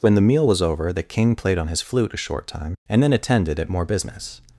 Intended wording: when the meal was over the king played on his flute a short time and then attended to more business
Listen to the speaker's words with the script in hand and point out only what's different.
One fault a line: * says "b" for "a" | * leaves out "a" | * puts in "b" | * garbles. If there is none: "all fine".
* says "at" for "to"